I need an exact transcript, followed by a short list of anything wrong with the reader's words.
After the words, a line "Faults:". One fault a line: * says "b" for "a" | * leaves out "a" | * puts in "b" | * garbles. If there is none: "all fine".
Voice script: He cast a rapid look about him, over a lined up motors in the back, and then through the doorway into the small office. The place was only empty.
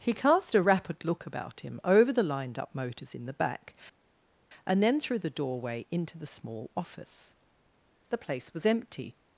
He cast a rapid look about him, over the lined up motors in the back, and then through the doorway into the small office. The place was empty.
Faults:
* says "the" for "a"
* leaves out "only"